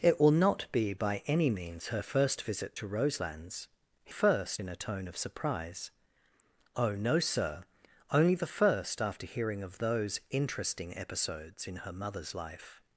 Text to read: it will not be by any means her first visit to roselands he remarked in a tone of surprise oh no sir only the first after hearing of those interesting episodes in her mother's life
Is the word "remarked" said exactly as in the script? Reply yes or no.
no